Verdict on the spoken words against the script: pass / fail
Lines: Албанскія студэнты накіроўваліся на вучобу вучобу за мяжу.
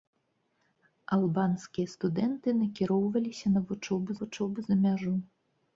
pass